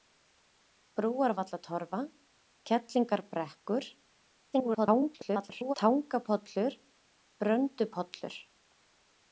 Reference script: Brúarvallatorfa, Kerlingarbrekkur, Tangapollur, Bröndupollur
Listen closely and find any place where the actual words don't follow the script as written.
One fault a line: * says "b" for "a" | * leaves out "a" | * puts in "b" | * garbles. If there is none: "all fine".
* garbles